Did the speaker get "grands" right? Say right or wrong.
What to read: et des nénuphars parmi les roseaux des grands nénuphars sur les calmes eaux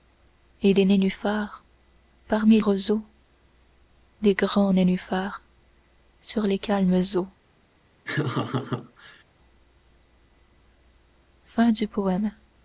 right